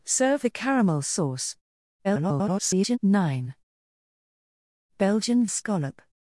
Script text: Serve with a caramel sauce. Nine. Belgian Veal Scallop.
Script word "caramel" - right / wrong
right